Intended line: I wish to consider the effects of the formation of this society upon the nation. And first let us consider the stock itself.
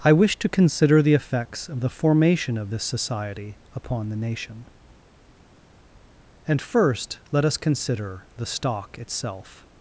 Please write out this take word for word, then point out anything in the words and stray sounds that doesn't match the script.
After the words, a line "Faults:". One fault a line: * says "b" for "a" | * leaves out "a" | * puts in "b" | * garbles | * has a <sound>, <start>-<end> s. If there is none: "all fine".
I wish to consider the effects of the formation of this society upon the nation. And first let us consider the stock itself.
Faults:
all fine